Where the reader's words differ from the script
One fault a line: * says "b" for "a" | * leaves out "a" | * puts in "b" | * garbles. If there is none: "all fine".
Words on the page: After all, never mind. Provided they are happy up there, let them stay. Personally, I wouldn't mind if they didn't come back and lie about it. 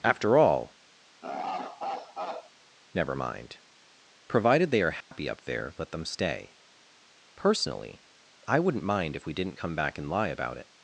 * says "we" for "they"